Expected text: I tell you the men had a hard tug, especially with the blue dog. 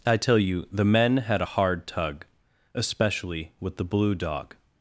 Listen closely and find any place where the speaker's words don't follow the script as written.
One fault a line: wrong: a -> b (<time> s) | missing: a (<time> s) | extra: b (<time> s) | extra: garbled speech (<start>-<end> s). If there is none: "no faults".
no faults